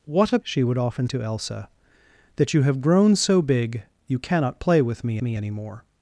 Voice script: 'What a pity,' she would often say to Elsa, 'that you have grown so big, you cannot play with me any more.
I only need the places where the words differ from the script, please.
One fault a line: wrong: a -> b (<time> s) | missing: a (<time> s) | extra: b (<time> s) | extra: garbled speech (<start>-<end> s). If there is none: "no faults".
missing: pity (0.4 s)
missing: say (1.1 s)
extra: me (5.2 s)